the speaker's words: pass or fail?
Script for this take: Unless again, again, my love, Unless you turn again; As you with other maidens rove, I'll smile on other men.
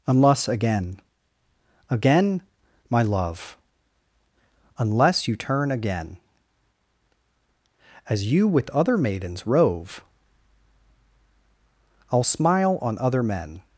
pass